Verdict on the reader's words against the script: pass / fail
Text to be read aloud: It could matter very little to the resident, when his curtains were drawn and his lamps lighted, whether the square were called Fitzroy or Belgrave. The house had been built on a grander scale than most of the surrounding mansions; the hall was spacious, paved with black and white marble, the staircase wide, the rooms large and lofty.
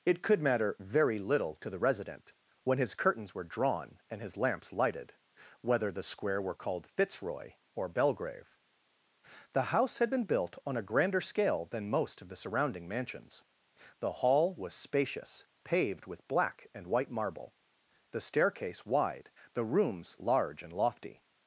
pass